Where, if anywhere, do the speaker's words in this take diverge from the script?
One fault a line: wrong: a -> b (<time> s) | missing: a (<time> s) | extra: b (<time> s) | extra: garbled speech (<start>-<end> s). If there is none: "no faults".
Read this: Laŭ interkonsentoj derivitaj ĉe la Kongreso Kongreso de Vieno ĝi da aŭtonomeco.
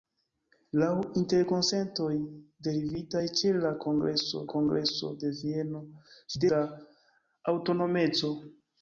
no faults